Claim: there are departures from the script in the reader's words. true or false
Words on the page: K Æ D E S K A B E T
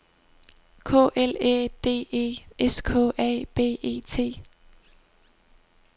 true